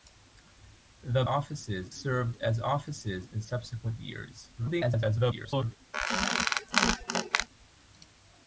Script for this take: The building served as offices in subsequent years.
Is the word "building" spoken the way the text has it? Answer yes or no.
no